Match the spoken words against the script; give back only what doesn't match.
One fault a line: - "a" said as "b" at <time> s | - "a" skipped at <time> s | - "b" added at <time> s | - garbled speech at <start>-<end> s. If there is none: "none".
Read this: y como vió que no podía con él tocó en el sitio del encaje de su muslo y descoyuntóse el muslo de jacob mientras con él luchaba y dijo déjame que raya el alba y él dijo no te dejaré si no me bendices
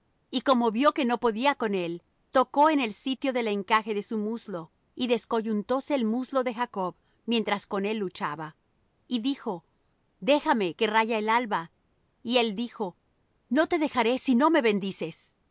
none